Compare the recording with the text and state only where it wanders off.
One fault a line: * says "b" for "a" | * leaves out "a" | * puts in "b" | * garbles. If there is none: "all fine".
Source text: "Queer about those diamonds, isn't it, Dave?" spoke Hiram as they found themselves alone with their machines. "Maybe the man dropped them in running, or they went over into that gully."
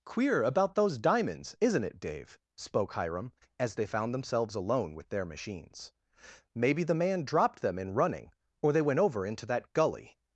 all fine